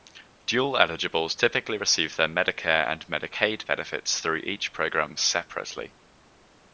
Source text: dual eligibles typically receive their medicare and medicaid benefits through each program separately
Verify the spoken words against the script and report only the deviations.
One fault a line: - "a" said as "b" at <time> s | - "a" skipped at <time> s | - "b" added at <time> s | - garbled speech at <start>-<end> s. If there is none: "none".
none